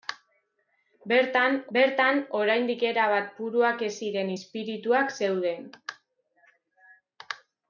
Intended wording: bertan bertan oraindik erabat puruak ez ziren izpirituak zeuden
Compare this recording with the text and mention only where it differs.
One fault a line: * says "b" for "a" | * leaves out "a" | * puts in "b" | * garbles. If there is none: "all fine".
all fine